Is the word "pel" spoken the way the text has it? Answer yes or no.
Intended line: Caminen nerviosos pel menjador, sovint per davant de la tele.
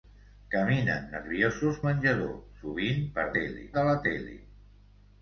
no